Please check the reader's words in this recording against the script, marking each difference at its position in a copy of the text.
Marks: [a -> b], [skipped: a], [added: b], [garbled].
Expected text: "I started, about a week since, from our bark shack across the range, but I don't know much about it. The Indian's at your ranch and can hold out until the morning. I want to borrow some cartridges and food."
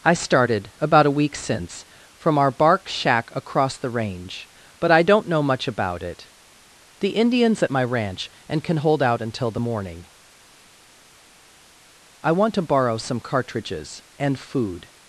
"I started, about a week since, from our bark shack across the range, but I don't know much about it. The Indian's at [your -> my] ranch and can hold out until the morning. I want to borrow some cartridges and food."